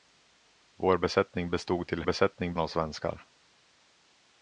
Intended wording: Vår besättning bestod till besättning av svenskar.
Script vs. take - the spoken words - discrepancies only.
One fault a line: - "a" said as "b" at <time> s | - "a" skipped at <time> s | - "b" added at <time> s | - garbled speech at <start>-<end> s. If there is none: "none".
none